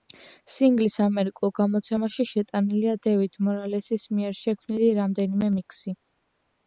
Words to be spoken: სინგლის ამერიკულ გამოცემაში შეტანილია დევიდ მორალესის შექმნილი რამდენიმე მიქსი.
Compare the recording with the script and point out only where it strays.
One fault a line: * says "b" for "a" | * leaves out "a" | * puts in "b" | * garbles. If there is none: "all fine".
* puts in "მიერ"